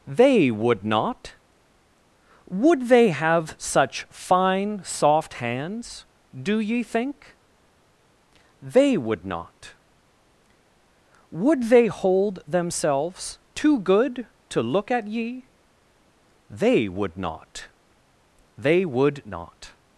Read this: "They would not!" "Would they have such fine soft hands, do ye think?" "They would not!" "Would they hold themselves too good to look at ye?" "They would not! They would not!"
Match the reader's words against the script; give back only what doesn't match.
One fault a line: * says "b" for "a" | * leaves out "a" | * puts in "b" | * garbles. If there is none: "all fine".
all fine